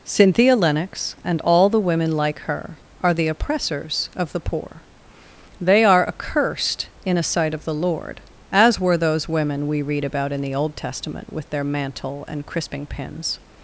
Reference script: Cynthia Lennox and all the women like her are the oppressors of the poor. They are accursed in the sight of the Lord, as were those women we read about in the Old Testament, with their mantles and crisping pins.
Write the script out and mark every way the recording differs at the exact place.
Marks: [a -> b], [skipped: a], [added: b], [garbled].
Cynthia Lennox and all the women like her are the oppressors of the poor. They are accursed in [the -> a] sight of the Lord, as were those women we read about in the Old Testament, with their [mantles -> mantle] and crisping pins.